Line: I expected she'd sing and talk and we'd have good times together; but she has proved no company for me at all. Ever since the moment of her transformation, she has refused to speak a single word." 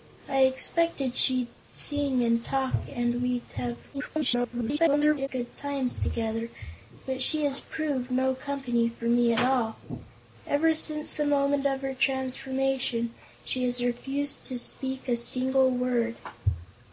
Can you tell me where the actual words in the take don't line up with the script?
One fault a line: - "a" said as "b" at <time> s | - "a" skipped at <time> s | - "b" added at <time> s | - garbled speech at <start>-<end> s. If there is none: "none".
- garbled speech at 3.9-5.3 s